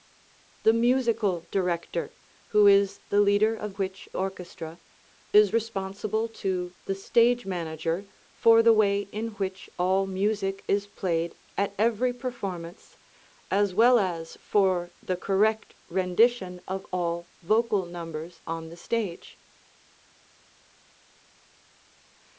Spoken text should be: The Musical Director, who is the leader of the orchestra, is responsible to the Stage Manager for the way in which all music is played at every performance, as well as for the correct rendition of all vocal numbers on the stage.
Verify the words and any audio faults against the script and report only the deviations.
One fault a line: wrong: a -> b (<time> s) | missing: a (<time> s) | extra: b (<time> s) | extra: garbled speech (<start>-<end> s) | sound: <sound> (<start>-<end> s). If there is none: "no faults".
wrong: the -> which (3.8 s)